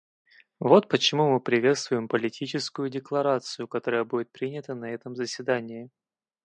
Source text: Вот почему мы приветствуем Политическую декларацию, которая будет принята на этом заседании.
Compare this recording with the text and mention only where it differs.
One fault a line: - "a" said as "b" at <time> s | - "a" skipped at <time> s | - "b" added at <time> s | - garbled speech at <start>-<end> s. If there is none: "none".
none